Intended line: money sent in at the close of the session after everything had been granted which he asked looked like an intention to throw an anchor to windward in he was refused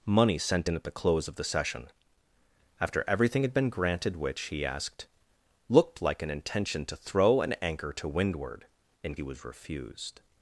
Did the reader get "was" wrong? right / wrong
right